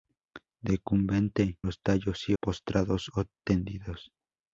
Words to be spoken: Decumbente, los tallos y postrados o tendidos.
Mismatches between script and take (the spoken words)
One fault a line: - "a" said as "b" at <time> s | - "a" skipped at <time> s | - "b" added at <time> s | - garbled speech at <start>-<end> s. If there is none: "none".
none